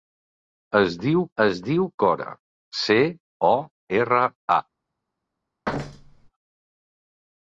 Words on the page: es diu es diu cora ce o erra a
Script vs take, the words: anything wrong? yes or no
no